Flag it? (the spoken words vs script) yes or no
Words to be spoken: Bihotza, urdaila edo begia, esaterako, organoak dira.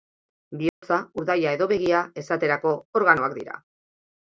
no